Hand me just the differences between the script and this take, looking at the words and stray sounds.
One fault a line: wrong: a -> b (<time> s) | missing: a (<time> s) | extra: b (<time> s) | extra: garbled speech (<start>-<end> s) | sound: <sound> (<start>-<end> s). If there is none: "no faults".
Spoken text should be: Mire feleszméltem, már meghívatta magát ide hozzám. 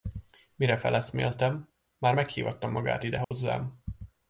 sound: dropout (3.2-3.3 s)